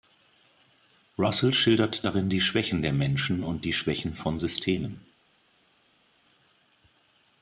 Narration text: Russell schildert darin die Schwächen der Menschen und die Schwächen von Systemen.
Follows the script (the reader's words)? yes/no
yes